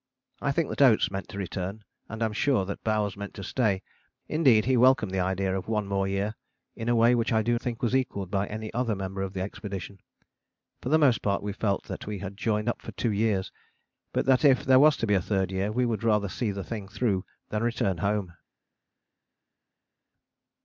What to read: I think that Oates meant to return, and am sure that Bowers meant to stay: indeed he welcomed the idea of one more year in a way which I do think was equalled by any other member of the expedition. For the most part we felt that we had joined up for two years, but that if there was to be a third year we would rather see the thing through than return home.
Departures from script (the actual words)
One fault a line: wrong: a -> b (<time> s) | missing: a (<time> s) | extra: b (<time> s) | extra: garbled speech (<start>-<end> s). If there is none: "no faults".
no faults